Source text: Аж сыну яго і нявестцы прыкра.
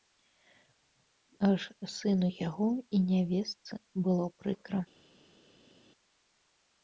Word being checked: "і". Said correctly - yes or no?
yes